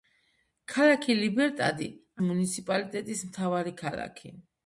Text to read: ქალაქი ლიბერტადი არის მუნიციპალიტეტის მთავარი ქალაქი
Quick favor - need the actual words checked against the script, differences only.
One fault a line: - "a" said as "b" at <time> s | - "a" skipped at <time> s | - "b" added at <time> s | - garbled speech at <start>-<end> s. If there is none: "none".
- "არის" skipped at 1.9 s